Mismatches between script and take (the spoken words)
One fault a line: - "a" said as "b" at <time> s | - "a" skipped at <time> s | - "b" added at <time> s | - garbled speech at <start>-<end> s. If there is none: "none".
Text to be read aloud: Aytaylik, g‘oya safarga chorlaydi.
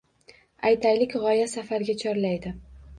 none